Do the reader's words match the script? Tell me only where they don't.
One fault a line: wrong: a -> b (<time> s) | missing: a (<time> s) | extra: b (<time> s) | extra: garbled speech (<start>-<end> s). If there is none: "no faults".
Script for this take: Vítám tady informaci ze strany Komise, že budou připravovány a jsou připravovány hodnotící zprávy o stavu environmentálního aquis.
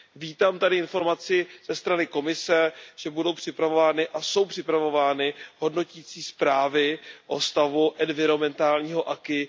no faults